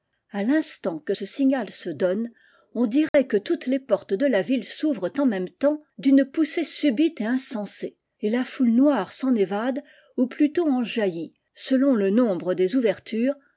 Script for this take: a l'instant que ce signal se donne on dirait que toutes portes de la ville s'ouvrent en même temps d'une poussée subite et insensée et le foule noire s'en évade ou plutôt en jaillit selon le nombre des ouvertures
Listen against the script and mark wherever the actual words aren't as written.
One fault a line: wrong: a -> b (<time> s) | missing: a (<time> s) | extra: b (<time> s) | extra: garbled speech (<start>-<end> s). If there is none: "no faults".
extra: les (3.6 s)
wrong: le -> la (8.3 s)